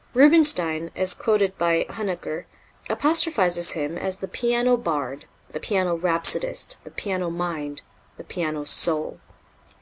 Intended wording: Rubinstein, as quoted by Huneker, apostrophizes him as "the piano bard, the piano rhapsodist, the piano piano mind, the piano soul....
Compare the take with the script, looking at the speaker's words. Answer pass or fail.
fail